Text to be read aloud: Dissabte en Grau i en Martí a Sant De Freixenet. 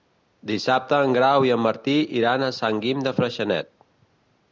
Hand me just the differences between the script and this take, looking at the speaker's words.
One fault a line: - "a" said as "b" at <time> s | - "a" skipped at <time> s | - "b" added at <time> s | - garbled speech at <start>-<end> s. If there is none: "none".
- "iran" added at 2.2 s
- "Guim" added at 2.9 s